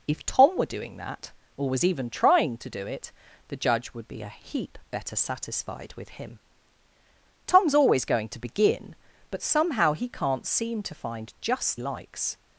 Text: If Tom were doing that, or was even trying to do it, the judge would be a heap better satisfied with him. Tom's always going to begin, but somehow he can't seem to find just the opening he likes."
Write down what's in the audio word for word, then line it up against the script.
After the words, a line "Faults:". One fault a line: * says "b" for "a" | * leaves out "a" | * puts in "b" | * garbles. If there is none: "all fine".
If Tom were doing that, or was even trying to do it, the judge would be a heap better satisfied with him. Tom's always going to begin, but somehow he can't seem to find just likes."
Faults:
* leaves out "the opening he"